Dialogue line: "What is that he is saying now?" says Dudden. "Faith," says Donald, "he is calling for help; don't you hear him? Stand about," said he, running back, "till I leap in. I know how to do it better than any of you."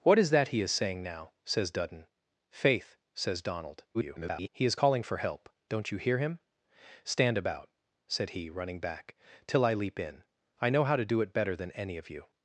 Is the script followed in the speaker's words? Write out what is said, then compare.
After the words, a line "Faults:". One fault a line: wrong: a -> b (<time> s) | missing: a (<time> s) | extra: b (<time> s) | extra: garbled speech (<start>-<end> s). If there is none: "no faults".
"What is that he is saying now?" says Dudden. "Faith," says Donald, [garbled] "he is calling for help; don't you hear him? Stand about," said he, running back, "till I leap in. I know how to do it better than any of you."
Faults:
extra: garbled speech (3.9-4.5 s)